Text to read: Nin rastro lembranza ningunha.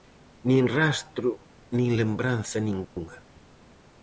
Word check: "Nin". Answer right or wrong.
right